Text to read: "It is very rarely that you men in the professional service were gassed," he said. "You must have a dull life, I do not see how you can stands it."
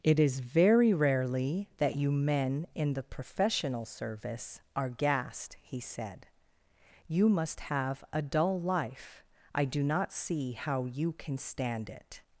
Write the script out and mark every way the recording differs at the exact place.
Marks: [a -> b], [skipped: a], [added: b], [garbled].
"It is very rarely that you men in the professional service [were -> are] gassed," he said. "You must have a dull life, I do not see how you can [stands -> stand] it."